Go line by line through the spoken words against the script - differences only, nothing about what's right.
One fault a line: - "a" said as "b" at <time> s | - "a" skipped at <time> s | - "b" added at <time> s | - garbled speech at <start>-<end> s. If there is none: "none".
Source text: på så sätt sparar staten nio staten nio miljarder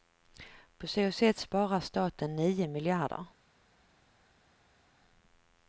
- "staten nio" skipped at 2.7 s